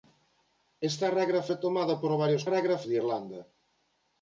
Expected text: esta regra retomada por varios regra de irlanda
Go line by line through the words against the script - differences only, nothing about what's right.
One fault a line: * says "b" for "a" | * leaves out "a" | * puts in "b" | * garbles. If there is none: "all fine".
all fine